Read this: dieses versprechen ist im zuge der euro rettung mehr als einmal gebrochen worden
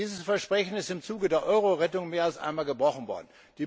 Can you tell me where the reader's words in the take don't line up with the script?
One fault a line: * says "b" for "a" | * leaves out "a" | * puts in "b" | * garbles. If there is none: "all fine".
all fine